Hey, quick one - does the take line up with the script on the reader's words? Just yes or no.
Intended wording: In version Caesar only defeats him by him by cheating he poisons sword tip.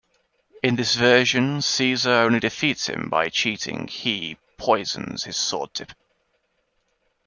no